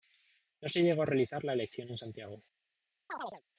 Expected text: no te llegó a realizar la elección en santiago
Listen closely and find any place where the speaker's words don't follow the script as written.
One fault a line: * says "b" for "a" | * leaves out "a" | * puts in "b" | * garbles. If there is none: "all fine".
* says "se" for "te"